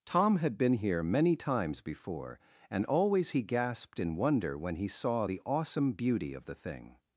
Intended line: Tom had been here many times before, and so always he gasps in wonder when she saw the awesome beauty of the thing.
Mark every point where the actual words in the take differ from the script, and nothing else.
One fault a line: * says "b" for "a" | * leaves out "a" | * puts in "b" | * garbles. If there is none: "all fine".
* leaves out "so"
* says "gasped" for "gasps"
* says "he" for "she"